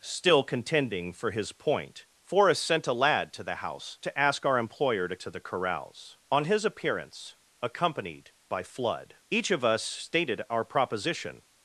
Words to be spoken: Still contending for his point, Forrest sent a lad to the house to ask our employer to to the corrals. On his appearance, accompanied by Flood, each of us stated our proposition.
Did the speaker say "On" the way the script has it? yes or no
yes